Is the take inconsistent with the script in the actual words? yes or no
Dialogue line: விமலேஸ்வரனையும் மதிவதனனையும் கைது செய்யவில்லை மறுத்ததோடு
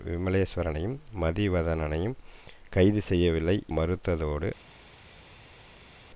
no